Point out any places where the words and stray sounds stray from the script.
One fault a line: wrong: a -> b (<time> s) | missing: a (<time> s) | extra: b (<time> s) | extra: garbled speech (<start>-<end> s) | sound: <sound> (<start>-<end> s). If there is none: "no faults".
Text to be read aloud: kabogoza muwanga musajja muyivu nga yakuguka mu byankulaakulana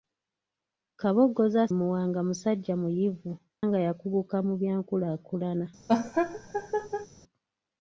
sound: laugh (5.9-7.1 s)